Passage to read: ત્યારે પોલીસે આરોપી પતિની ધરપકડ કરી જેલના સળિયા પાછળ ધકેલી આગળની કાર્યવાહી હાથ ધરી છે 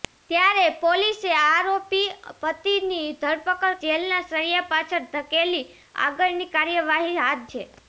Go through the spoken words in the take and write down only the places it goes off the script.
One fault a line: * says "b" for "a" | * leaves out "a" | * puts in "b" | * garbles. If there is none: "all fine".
* leaves out "કરી"
* leaves out "ધરી"